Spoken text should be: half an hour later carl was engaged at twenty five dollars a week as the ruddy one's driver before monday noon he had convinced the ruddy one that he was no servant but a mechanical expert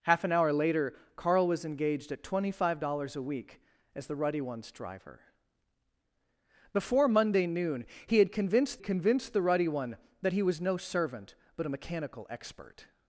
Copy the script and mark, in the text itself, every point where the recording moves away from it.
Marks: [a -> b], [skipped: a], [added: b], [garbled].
half an hour later carl was engaged at twenty five dollars a week as the ruddy one's driver before monday noon he had convinced [added: convinced] the ruddy one that he was no servant but a mechanical expert